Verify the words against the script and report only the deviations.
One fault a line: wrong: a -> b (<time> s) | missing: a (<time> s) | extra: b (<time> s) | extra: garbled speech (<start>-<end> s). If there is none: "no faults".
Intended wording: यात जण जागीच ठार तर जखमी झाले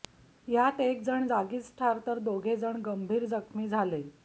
extra: एक (0.8 s)
extra: दोघे जण गंभीर (2.2 s)